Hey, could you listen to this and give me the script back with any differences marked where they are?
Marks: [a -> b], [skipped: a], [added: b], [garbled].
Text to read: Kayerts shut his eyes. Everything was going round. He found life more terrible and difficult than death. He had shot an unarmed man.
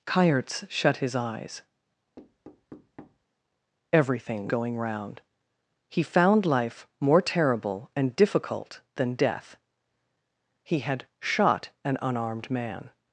Kayerts shut his eyes. Everything [skipped: was] going round. He found life more terrible and difficult than death. He had shot an unarmed man.